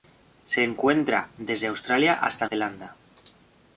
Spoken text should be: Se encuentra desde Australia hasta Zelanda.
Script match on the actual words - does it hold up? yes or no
yes